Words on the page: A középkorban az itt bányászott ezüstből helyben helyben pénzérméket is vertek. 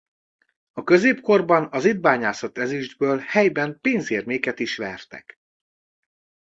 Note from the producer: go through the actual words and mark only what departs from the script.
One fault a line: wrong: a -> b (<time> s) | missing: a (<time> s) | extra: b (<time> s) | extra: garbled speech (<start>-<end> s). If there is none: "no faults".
missing: helyben (3.8 s)